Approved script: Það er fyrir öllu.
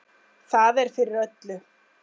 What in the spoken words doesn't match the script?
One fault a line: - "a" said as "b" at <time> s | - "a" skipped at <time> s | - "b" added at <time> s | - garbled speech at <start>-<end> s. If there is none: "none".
none